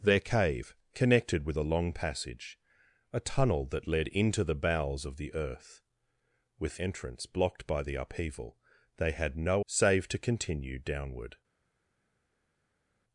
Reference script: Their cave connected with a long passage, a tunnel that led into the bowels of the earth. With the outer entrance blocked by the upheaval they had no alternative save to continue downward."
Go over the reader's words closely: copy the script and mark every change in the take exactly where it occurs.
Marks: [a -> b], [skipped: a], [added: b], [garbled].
Their cave connected with a long passage, a tunnel that led into the bowels of the earth. With [skipped: the outer] entrance blocked by the upheaval they had no [skipped: alternative] save to continue downward."